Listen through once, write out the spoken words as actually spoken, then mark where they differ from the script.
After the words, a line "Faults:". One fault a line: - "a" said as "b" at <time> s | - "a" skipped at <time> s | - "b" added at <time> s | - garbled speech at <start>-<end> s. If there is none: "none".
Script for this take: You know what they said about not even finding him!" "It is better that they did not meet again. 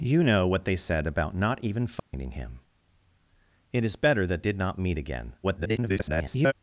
You know what they said about not even finding him!" "It is better that did not meet again. [garbled]
Faults:
- "they" skipped at 4.4 s
- garbled speech at 5.4-6.5 s